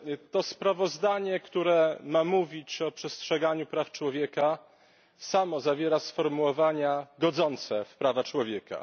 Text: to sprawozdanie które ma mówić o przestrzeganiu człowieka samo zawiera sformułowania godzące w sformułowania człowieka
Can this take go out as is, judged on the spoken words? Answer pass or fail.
fail